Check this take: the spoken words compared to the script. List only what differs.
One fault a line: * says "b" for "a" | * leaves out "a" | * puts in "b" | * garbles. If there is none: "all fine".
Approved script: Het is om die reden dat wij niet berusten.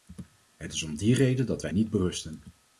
all fine